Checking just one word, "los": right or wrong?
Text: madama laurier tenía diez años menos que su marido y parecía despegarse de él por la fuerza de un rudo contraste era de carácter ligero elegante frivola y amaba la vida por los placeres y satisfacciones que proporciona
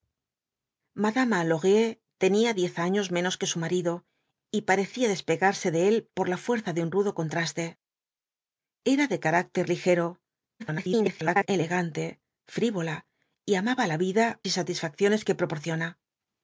wrong